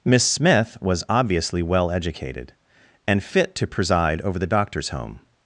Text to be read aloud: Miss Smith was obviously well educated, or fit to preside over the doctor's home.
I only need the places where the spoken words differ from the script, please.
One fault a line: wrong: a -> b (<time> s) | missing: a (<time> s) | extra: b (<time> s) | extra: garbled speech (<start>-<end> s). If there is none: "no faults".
wrong: or -> and (3.1 s)